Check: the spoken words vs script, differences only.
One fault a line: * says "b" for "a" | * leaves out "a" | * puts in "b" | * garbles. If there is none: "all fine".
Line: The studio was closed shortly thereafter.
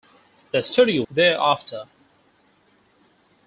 * leaves out "was closed shortly"